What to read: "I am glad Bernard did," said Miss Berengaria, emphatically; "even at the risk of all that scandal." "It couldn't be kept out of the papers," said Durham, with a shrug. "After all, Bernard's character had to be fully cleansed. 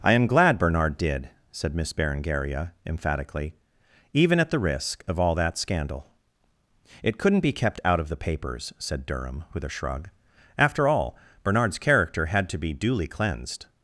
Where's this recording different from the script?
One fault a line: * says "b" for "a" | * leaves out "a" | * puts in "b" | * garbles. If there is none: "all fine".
* says "duly" for "fully"